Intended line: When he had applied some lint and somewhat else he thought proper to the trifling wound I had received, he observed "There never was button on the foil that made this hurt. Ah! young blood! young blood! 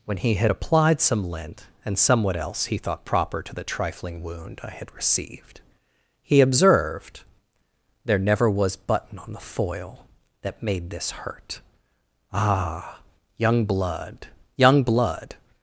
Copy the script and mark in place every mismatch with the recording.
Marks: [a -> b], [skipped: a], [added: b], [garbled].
When he had applied some lint and somewhat else he thought proper to the trifling wound I had received, he observed "There never was button on the foil that made this hurt. Ah! young blood! young blood!